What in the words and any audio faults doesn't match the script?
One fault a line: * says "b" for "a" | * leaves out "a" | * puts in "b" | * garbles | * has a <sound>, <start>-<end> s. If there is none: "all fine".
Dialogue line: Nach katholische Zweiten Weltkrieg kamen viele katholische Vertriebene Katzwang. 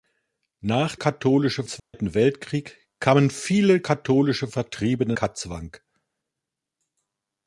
* has a dropout, 1.8-1.9 s